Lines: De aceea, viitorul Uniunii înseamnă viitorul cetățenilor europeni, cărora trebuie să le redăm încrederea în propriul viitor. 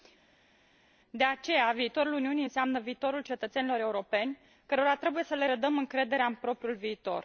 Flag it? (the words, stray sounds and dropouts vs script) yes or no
no